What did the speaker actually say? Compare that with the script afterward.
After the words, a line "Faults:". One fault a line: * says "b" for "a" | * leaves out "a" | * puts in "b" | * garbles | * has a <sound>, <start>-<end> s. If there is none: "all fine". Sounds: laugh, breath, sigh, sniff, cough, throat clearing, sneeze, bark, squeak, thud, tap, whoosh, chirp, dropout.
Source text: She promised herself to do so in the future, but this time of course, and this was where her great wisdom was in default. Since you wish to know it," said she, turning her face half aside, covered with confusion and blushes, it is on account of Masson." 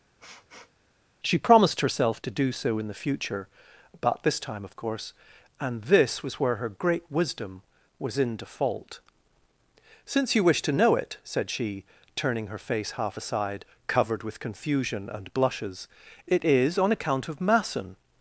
She promised herself to do so in the future, but this time of course, and this was where her great wisdom was in default. Since you wish to know it," said she, turning her face half aside, covered with confusion and blushes, it is on account of Masson."
Faults:
* has a sniff, 0.2-0.7 s